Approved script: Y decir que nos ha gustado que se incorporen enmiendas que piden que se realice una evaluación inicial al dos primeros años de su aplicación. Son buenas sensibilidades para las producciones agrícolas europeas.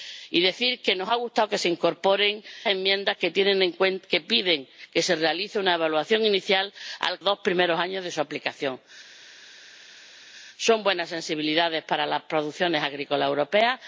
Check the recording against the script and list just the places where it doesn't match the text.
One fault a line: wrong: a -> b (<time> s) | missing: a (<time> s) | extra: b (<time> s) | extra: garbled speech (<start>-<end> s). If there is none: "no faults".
no faults